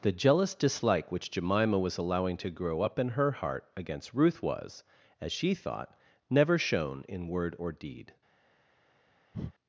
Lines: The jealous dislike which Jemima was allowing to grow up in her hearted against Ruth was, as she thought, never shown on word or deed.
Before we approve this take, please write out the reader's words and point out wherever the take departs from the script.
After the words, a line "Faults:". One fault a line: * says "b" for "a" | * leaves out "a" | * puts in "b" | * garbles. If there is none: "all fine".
The jealous dislike which Jemima was allowing to grow up in her heart against Ruth was, as she thought, never shown in word or deed.
Faults:
* says "heart" for "hearted"
* says "in" for "on"